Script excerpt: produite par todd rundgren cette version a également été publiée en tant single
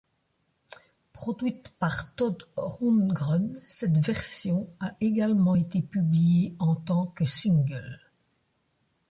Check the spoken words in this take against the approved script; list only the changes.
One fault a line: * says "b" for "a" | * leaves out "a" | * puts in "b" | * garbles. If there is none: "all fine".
* puts in "que"